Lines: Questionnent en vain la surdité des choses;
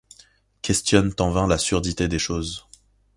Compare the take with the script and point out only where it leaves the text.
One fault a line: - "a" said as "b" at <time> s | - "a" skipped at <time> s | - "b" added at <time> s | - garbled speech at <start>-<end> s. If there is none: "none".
none